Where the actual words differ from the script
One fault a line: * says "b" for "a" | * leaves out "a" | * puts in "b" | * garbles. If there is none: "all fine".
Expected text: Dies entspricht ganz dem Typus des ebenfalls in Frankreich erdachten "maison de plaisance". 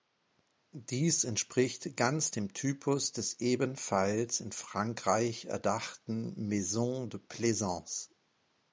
all fine